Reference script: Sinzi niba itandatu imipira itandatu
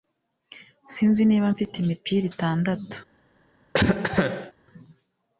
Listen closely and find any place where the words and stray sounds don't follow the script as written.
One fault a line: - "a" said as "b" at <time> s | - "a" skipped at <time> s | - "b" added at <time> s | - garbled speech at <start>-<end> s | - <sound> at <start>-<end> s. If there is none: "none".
- "itandatu" said as "mfite" at 1.5 s
- cough at 3.7-4.5 s